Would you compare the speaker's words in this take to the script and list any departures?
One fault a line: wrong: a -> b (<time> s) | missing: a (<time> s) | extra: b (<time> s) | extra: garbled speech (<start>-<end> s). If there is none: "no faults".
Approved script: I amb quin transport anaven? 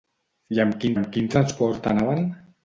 extra: amb quin (0.9 s)